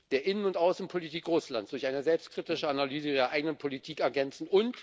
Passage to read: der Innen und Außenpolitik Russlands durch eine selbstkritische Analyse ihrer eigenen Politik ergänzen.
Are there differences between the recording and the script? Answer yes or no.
no